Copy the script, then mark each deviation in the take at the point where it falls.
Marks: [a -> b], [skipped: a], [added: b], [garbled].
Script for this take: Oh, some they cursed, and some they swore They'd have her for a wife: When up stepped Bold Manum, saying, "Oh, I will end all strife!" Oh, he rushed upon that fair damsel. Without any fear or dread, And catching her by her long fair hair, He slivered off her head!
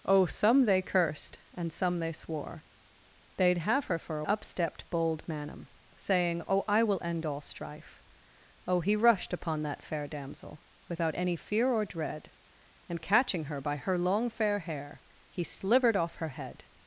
Oh, some they cursed, and some they swore They'd have her for a [skipped: wife: When] up stepped Bold Manum, saying, "Oh, I will end all strife!" Oh, he rushed upon that fair damsel. Without any fear or dread, And catching her by her long fair hair, He slivered off her head!